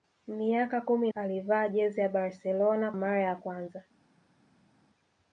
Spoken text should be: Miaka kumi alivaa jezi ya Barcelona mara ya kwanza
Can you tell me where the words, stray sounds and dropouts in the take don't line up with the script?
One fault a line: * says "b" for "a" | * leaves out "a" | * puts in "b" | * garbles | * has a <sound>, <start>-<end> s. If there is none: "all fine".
all fine